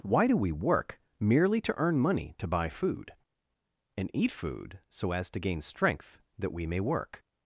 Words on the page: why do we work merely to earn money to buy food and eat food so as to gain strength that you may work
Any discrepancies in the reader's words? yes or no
yes